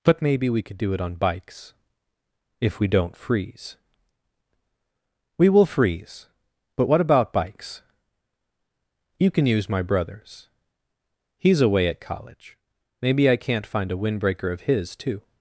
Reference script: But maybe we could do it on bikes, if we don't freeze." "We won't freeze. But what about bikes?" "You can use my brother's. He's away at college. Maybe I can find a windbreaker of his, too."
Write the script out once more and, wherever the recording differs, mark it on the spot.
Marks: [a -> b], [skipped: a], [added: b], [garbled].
But maybe we could do it on bikes, if we don't freeze." "We [won't -> will] freeze. But what about bikes?" "You can use my brother's. He's away at college. Maybe I [can -> can't] find a windbreaker of his, too."